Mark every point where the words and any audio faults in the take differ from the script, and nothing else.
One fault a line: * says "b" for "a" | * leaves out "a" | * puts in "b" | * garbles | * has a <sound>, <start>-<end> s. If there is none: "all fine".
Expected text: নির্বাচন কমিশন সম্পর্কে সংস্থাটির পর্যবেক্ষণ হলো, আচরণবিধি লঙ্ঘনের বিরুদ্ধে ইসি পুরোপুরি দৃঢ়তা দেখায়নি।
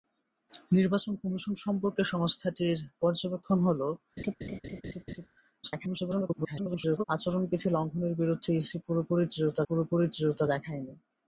* has a laugh, 4.2-5.3 s
* garbles
* puts in "পুরোপুরি দৃঢ়তা"